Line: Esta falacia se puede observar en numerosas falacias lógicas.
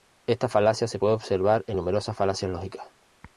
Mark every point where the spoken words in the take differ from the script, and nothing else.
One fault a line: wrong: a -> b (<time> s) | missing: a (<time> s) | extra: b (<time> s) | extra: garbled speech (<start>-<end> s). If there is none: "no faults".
no faults